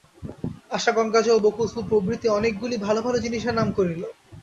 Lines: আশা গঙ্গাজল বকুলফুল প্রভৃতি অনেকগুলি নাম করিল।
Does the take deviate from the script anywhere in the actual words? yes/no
yes